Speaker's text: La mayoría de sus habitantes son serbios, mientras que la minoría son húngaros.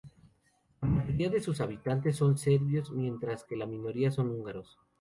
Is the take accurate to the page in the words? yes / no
yes